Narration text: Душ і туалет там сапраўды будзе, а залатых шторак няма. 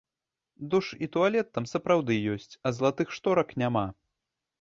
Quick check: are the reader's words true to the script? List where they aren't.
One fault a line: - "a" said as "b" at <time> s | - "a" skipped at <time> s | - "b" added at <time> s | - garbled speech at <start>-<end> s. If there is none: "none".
- "будзе" said as "ёсць" at 2.4 s